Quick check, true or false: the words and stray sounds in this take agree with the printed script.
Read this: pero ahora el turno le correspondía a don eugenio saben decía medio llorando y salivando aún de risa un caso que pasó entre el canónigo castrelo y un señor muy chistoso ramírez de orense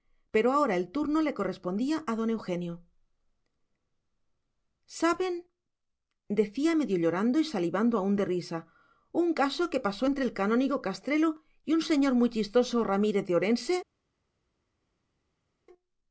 true